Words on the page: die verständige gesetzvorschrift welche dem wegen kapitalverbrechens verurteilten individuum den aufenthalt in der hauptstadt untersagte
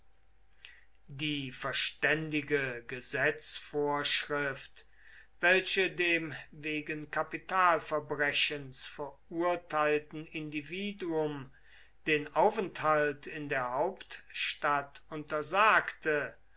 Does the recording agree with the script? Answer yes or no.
yes